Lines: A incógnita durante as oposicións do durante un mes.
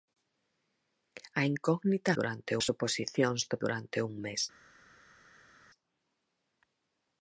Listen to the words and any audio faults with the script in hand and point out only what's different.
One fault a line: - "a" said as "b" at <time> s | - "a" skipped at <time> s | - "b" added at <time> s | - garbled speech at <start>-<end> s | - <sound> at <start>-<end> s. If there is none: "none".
none